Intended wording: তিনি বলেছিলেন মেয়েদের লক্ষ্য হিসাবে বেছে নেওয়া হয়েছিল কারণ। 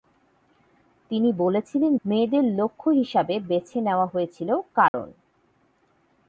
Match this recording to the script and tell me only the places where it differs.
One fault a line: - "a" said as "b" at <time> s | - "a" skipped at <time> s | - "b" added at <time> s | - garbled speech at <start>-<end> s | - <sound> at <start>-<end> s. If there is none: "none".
- dropout at 4.9-4.9 s